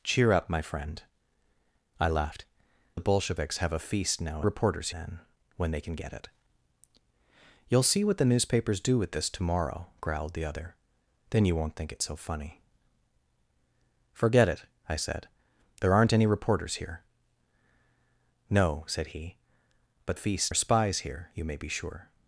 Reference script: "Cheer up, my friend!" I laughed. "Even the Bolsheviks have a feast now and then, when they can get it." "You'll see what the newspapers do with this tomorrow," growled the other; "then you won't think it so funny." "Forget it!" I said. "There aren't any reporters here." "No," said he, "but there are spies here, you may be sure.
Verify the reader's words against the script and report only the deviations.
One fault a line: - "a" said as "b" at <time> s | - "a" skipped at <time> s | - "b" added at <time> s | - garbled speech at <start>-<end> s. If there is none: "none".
- "Even" skipped at 2.5 s
- "and" said as "reporters" at 4.4 s
- "there" said as "feast" at 20.1 s